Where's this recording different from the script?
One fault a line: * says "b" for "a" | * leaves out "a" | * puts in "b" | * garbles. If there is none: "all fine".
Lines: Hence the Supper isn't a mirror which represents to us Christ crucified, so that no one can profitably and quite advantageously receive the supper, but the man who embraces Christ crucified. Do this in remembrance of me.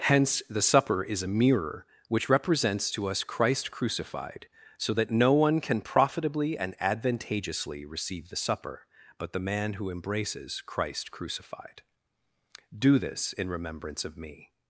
* says "is" for "isn't"
* leaves out "quite"